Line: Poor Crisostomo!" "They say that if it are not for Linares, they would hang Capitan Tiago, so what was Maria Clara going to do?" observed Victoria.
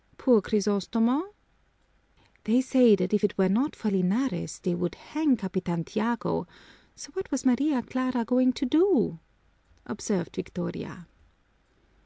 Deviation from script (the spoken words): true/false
true